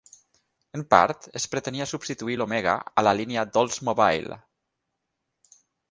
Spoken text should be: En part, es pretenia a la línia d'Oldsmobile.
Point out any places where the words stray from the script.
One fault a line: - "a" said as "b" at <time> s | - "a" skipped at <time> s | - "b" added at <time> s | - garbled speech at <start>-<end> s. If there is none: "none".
- "substituir l'Omega" added at 1.9 s